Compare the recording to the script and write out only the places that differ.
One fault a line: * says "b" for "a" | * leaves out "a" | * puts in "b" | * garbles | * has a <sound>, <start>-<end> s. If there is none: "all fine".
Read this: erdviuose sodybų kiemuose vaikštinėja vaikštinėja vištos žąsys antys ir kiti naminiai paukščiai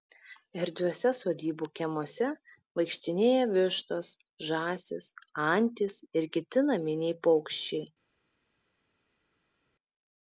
* leaves out "vaikštinėja"